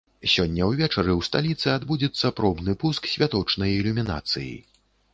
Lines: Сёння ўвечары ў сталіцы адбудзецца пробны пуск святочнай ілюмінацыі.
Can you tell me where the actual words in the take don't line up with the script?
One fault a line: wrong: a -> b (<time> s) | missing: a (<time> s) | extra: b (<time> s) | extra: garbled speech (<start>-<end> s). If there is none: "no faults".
no faults